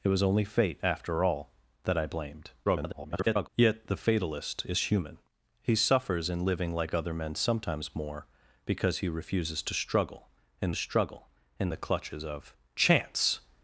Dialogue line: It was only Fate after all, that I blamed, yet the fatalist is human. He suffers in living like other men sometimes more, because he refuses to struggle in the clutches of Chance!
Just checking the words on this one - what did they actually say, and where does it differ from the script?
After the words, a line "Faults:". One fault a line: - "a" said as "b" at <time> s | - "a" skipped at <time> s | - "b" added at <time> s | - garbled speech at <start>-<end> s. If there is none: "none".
It was only Fate after all, that I blamed, [garbled] yet the fatalist is human. He suffers in living like other men sometimes more, because he refuses to struggle in struggle in the clutches of Chance!
Faults:
- garbled speech at 2.6-3.5 s
- "struggle in" added at 10.8 s